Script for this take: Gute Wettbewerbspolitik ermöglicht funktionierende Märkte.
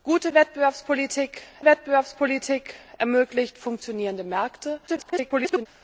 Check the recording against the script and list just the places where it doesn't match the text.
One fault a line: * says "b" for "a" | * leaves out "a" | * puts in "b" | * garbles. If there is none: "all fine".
* puts in "Wettbewerbspolitik"
* garbles